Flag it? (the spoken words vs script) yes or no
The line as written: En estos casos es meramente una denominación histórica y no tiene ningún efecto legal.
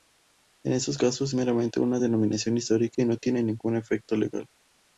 yes